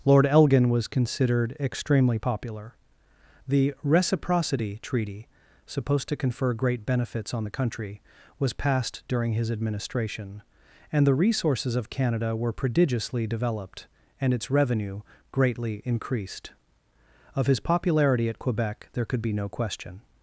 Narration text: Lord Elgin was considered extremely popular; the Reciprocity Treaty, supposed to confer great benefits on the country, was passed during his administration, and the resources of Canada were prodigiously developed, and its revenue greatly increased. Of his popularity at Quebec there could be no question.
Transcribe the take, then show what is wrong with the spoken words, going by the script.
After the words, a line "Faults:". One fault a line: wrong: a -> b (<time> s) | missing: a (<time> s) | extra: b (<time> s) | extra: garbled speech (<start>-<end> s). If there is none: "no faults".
Lord Elgin was considered extremely popular; the Reciprocity Treaty, supposed to confer great benefits on the country, was passed during his administration, and the resources of Canada were prodigiously developed, and its revenue greatly increased. Of his popularity at Quebec there could be no question.
Faults:
no faults